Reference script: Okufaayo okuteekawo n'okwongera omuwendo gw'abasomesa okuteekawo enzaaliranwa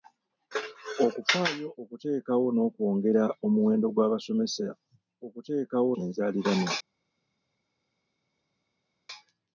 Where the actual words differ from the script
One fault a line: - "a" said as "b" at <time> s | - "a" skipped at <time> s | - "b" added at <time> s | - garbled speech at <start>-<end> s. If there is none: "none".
none